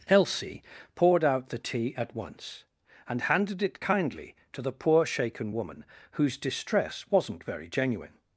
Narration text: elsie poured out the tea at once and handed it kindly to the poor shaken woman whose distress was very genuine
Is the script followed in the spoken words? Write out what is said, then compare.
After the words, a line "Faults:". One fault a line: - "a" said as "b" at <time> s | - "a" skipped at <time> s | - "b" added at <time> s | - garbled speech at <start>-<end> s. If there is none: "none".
elsie poured out the tea at once and handed it kindly to the poor shaken woman whose distress wasn't very genuine
Faults:
- "was" said as "wasn't" at 7.1 s